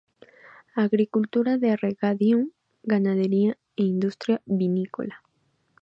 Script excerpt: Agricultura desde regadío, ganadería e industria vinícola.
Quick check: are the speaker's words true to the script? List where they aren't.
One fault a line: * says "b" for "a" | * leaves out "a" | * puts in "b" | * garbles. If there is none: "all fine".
* says "de" for "desde"